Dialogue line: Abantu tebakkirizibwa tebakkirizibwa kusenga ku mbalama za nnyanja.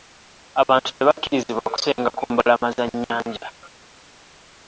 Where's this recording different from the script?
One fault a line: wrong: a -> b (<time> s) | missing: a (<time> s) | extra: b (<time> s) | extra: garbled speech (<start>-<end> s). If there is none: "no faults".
missing: tebakkirizibwa (1.6 s)